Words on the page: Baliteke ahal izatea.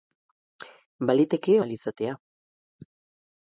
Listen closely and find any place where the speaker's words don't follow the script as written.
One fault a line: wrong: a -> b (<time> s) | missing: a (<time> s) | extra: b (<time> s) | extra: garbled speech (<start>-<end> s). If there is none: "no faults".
no faults